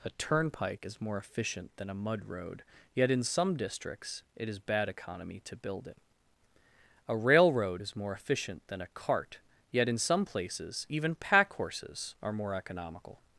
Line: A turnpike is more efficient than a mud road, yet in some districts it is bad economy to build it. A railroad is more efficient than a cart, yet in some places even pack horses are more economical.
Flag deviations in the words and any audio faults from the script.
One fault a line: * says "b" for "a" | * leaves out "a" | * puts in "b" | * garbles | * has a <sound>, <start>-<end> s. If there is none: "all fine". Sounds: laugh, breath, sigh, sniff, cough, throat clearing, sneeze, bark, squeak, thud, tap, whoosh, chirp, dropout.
all fine